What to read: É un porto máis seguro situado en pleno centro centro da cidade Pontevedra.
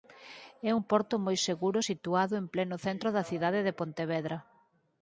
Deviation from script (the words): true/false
true